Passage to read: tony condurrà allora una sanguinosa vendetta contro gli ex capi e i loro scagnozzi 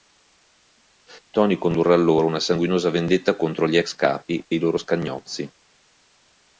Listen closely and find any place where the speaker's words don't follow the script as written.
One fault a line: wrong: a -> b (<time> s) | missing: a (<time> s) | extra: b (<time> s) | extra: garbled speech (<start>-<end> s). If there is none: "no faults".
no faults